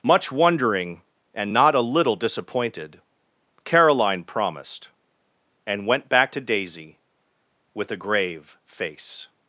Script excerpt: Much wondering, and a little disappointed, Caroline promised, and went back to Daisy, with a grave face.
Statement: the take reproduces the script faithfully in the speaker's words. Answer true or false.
false